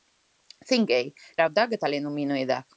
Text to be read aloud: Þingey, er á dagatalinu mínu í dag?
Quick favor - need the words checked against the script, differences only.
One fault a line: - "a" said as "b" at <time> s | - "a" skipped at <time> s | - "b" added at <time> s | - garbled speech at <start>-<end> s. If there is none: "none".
none